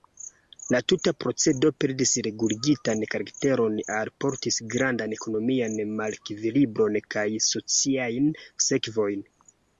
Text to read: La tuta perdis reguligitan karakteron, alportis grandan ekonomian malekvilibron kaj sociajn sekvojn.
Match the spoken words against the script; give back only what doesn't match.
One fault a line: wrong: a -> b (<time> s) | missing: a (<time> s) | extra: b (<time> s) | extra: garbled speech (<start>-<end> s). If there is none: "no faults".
extra: procedo (1.2 s)